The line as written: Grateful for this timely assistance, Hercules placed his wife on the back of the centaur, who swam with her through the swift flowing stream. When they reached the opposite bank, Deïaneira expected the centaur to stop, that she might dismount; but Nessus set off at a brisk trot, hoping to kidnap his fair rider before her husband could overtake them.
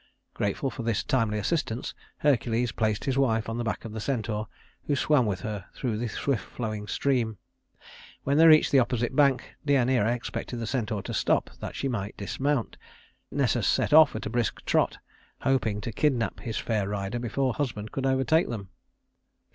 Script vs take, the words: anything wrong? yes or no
yes